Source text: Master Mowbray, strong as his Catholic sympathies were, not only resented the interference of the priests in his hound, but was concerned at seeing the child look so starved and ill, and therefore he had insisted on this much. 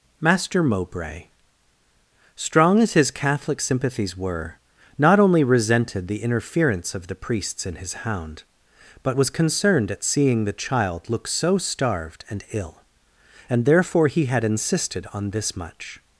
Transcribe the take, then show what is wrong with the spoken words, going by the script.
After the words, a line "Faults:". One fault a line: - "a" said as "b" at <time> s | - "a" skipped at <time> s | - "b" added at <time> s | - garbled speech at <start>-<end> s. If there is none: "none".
Master Mowbray, strong as his Catholic sympathies were, not only resented the interference of the priests in his hound, but was concerned at seeing the child look so starved and ill, and therefore he had insisted on this much.
Faults:
none